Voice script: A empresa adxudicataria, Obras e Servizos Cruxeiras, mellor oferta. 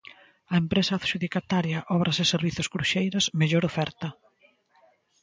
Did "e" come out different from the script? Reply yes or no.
no